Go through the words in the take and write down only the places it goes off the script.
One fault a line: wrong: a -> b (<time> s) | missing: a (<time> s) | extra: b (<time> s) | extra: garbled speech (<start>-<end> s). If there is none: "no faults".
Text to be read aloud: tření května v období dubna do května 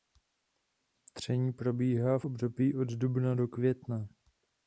wrong: května -> probíhá (1.5 s)
extra: od (2.7 s)